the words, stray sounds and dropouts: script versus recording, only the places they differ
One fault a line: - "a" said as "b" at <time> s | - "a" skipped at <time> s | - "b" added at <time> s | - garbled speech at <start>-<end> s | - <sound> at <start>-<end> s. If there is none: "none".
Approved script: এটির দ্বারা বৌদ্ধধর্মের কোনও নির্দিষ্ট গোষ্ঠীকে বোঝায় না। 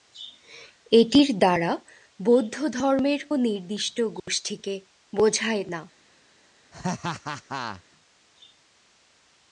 - "কোনও" skipped at 3.2 s
- dropout at 4.2-4.3 s
- laugh at 6.7-7.8 s